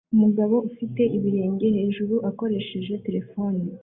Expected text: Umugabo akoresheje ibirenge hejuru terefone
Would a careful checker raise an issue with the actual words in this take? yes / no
yes